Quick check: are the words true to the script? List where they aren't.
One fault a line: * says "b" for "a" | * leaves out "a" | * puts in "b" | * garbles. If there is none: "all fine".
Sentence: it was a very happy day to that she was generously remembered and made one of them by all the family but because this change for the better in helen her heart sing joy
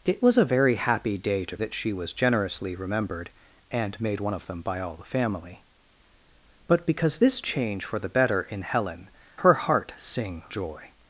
all fine